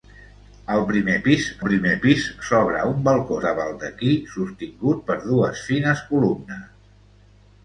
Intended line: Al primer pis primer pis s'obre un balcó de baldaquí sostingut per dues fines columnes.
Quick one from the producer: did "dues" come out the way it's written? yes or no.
yes